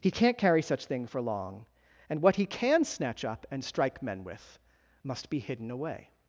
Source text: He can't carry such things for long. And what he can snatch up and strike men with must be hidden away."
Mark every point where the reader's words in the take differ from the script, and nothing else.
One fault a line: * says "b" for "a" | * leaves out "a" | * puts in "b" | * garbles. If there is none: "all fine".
* says "thing" for "things"